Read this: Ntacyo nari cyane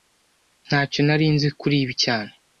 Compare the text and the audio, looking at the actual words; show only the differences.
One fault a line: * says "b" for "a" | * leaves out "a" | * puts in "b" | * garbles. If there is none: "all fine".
* puts in "nzi kuri ibi"